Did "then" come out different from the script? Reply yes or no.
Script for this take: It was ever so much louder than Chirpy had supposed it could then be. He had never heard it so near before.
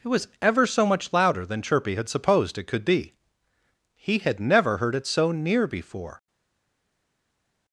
yes